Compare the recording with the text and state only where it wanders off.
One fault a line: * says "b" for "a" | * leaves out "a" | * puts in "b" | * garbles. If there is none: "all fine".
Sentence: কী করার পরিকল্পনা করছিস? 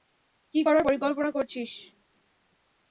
all fine